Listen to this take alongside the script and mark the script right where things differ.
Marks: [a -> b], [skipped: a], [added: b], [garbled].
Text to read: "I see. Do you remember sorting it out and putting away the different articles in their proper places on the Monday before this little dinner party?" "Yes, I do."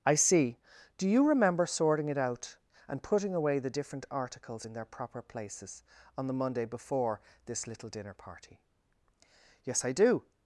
"I see. Do you remember sorting it out and putting away the different articles in their proper places on the Monday before this little dinner party?" "Yes, I do."